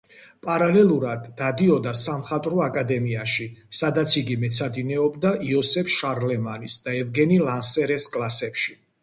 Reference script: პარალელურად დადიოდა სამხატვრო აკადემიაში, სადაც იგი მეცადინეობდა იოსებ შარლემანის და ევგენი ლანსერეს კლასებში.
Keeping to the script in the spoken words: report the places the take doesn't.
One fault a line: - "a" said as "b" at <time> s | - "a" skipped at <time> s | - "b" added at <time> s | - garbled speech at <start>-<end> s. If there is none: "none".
none